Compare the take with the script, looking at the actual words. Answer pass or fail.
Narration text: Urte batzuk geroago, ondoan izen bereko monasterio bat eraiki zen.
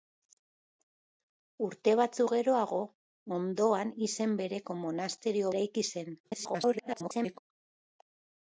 fail